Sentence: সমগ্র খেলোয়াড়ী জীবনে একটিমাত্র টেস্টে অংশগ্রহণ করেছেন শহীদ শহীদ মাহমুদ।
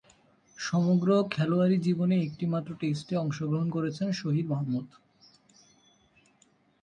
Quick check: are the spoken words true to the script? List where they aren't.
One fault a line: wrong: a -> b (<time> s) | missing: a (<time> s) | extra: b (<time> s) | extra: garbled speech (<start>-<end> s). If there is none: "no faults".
missing: শহীদ (4.5 s)